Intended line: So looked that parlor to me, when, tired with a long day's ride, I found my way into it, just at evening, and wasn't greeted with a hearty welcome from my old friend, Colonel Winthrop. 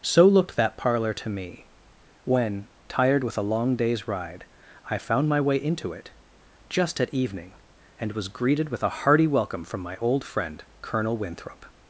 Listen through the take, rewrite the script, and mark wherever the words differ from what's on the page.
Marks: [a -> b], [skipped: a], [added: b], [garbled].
So looked that parlor to me, when, tired with a long day's ride, I found my way into it, just at evening, and [wasn't -> was] greeted with a hearty welcome from my old friend, Colonel Winthrop.